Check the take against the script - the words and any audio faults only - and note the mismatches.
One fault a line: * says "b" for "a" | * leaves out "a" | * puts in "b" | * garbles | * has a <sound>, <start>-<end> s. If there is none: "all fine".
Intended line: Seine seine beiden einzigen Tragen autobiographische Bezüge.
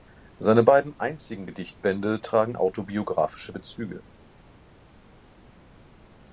* leaves out "seine"
* puts in "Gedichtbände"